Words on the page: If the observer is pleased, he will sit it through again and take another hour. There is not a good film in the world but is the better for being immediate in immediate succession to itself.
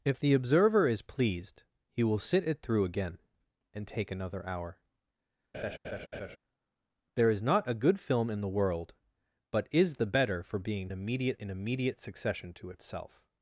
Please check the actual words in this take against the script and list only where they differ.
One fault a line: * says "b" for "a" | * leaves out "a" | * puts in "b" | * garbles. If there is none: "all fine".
all fine